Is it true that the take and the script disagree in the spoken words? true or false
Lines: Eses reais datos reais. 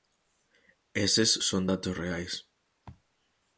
true